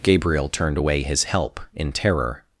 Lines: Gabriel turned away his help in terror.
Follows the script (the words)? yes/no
yes